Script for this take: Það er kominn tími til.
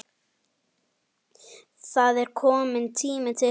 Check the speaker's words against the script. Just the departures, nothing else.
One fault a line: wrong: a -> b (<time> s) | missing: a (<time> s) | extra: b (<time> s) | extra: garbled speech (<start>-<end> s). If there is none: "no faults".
no faults